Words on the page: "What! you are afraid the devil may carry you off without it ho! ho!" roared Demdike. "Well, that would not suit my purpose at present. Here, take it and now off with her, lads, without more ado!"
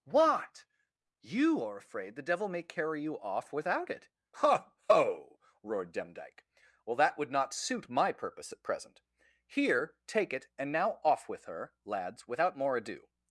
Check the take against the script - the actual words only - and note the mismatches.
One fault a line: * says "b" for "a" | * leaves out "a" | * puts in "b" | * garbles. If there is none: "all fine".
all fine